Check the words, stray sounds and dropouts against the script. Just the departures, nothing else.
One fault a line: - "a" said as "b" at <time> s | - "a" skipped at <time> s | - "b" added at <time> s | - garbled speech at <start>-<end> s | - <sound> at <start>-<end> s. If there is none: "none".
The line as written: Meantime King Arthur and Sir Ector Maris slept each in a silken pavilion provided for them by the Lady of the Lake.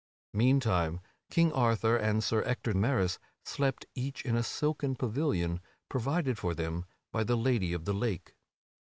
none